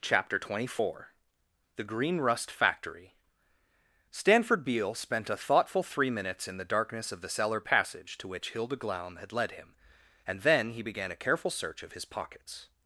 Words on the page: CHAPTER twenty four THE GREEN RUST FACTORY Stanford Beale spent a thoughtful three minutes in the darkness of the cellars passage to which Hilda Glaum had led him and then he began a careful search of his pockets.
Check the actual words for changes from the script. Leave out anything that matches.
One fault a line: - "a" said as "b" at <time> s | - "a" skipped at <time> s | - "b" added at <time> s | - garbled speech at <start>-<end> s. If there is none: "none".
- "cellars" said as "cellar" at 7.3 s